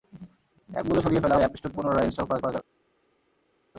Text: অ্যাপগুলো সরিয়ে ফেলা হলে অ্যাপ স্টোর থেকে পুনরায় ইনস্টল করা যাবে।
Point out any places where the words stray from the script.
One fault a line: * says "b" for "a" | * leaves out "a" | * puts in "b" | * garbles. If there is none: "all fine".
* leaves out "হলে"
* leaves out "থেকে"
* puts in "করা"